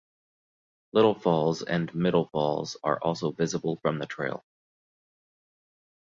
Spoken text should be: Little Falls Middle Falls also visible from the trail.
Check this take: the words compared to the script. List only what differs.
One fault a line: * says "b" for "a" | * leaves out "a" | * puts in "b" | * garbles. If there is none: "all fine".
* puts in "and"
* puts in "are"